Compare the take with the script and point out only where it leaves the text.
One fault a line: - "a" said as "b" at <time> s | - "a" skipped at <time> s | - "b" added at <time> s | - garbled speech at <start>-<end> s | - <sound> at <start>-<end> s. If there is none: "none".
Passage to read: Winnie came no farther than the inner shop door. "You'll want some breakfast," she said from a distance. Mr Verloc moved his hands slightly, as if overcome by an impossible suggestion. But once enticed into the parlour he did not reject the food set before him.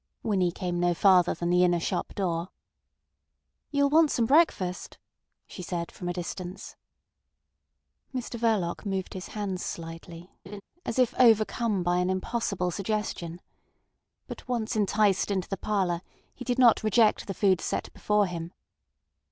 - laugh at 10.5-10.6 s